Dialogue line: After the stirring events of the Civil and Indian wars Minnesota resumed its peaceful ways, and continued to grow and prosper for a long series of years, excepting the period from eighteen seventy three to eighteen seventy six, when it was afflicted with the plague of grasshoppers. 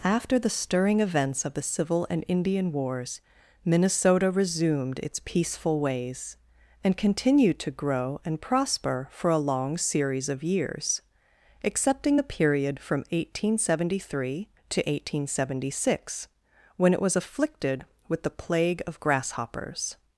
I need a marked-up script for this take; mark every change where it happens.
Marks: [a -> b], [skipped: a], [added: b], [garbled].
After the stirring events of the Civil and Indian wars Minnesota resumed its peaceful ways, and continued to grow and prosper for a long series of years, excepting the period from eighteen seventy three to eighteen seventy six, when it was afflicted with the plague of grasshoppers.